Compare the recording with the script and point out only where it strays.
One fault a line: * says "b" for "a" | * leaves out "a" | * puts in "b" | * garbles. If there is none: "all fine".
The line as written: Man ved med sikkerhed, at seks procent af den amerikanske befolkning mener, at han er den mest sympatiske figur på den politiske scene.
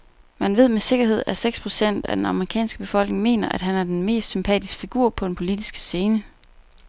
all fine